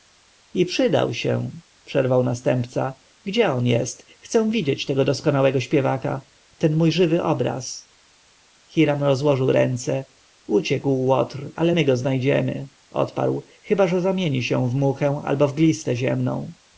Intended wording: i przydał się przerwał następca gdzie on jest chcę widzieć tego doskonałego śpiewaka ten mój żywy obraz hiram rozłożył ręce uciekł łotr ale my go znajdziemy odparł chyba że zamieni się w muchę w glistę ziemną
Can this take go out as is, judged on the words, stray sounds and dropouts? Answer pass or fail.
fail